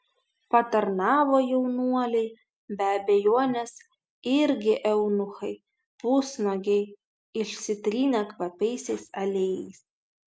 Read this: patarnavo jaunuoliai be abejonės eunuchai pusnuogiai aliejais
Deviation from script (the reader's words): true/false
true